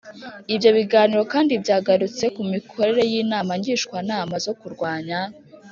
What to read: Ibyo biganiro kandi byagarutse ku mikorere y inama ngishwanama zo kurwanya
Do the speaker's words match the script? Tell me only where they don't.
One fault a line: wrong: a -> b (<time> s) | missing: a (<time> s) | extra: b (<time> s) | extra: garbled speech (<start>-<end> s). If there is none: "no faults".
no faults